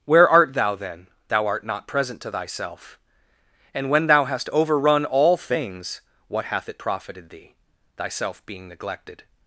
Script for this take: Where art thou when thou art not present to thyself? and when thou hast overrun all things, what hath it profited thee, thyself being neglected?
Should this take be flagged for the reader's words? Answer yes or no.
yes